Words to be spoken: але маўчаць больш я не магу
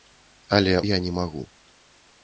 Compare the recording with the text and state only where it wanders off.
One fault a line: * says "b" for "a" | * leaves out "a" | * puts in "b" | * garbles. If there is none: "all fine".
* leaves out "маўчаць больш"